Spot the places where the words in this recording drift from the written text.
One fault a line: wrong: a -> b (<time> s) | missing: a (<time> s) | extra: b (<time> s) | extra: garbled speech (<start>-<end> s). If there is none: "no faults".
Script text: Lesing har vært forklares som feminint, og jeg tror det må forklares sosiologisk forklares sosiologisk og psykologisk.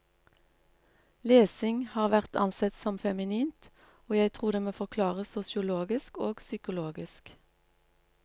wrong: forklares -> ansett (2.4 s)
missing: forklares sosiologisk (6.2 s)